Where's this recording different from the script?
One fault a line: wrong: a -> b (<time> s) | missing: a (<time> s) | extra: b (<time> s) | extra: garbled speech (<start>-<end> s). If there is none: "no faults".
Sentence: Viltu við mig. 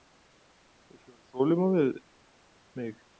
extra: vera þolinmóð (1.1 s)